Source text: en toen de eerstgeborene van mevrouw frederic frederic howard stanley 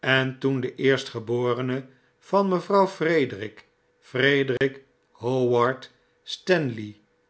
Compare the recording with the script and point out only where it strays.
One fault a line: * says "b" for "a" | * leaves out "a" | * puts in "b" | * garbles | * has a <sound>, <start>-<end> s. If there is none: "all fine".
* has a dropout, 4.6-4.6 s